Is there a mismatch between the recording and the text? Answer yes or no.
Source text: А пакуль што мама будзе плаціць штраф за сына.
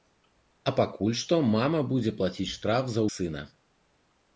no